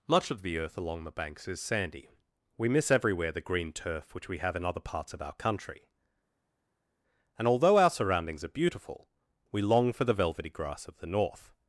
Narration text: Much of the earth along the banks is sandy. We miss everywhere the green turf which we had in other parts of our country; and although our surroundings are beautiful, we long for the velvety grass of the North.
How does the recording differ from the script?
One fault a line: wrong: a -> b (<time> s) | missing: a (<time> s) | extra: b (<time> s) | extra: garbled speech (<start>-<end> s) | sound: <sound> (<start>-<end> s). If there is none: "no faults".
wrong: had -> have (4.4 s)